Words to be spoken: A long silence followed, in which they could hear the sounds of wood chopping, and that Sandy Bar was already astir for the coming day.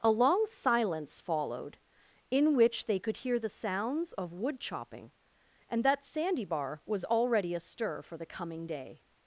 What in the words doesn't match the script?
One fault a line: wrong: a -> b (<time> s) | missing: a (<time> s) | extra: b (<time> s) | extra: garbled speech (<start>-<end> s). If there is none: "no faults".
no faults